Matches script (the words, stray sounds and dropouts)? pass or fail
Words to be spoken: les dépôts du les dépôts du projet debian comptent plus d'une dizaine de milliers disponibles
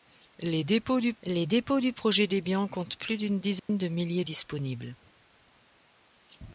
fail